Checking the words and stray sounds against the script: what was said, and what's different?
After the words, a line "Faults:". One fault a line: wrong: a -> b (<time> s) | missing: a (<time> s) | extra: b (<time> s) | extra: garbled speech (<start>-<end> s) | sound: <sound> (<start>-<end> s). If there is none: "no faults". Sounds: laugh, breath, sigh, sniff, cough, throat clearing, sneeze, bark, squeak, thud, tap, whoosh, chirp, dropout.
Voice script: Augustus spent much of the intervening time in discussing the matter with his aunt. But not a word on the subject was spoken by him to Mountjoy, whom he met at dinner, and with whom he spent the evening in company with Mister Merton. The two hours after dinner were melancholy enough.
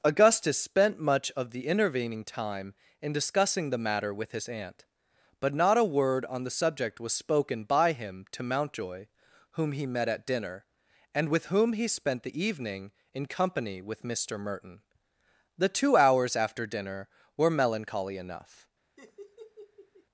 Augustus spent much of the intervening time in discussing the matter with his aunt. But not a word on the subject was spoken by him to Mountjoy, whom he met at dinner, and with whom he spent the evening in company with Mister Merton. The two hours after dinner were melancholy enough.
Faults:
sound: laugh (19.0-20.1 s)